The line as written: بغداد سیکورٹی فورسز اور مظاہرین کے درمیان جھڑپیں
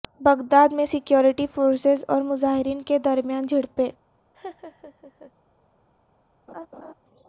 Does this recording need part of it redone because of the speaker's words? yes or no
yes